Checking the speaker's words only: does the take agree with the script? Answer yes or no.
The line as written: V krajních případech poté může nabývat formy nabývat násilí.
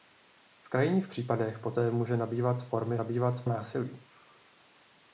yes